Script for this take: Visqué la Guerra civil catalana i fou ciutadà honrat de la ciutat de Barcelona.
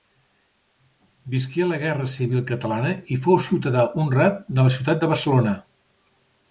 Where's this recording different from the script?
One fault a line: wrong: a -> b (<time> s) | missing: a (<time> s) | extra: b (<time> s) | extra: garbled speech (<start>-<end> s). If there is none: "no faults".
no faults